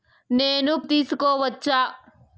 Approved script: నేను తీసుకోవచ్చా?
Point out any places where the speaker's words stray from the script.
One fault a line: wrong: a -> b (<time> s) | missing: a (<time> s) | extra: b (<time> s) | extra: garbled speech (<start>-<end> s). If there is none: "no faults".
no faults